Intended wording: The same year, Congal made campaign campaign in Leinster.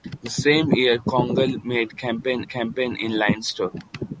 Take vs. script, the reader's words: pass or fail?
pass